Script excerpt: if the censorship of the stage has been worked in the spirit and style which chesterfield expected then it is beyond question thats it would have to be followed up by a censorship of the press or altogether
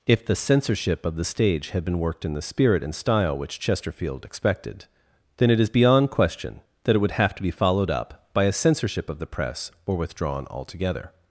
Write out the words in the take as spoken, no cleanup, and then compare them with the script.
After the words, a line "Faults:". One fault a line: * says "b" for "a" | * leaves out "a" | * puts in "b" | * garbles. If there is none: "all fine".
if the censorship of the stage had been worked in the spirit and style which chesterfield expected then it is beyond question that it would have to be followed up by a censorship of the press or withdrawn altogether
Faults:
* says "had" for "has"
* says "that" for "thats"
* puts in "withdrawn"